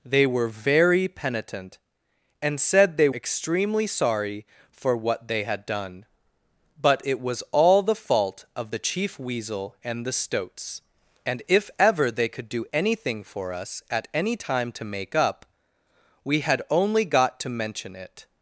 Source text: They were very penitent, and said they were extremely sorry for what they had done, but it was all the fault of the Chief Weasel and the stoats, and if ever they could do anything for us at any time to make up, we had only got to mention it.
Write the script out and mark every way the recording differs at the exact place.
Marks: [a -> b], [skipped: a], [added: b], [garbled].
They were very penitent, and said they [skipped: were] extremely sorry for what they had done, but it was all the fault of the Chief Weasel and the stoats, and if ever they could do anything for us at any time to make up, we had only got to mention it.